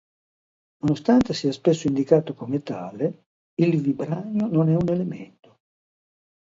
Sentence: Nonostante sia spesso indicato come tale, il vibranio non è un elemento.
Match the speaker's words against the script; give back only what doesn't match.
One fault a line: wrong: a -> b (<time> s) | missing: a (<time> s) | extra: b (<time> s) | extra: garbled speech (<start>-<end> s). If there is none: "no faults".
no faults